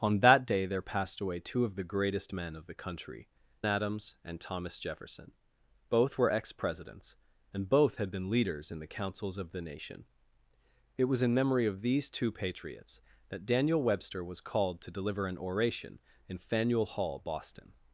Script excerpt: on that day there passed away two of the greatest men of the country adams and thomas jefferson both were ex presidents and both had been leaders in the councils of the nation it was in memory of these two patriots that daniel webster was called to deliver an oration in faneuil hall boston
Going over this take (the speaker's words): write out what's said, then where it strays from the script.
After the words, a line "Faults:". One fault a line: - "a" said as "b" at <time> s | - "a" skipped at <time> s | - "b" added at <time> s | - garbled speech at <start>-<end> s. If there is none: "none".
on that day there passed away two of the greatest men of the country adams and thomas jefferson both were ex presidents and both had been leaders in the councils of the nation it was in memory of these two patriots that daniel webster was called to deliver an oration in faneuil hall boston
Faults:
none